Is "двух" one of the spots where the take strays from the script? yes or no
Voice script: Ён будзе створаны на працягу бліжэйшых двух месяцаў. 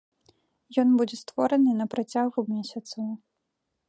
yes